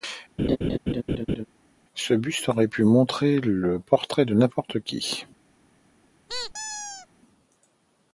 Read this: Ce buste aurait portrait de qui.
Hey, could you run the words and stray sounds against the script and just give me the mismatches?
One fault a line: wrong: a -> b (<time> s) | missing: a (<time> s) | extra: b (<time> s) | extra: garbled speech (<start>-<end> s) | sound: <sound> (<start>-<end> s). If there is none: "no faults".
sound: laugh (0.4-1.4 s)
extra: pu montrer le (2.7 s)
extra: n'importe (4.3 s)
sound: squeak (6.3-7.1 s)